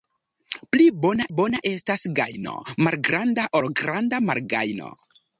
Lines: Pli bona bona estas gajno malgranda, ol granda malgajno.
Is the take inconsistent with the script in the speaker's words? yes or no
no